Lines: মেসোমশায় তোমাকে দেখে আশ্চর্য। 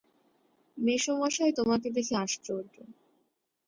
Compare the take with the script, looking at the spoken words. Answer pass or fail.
pass